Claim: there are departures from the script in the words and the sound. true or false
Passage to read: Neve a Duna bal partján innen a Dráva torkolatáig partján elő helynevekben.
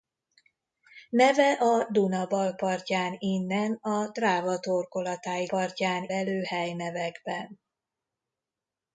false